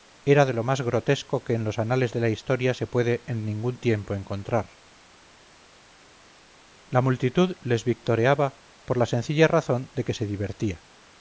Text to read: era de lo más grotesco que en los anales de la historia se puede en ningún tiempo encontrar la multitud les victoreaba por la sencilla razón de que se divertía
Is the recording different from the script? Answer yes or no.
no